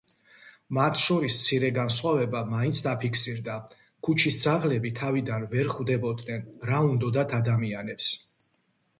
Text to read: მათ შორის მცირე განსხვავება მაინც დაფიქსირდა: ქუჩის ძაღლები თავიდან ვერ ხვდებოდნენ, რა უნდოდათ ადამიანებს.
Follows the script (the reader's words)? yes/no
yes